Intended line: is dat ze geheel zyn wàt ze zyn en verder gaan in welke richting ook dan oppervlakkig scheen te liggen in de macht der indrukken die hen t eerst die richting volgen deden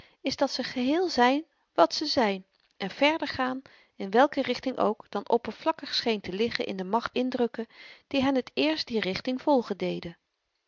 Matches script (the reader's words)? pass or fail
fail